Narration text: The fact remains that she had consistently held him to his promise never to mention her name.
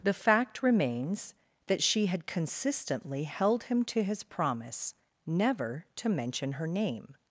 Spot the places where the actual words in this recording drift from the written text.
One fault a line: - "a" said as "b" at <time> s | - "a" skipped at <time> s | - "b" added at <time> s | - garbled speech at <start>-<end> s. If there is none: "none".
none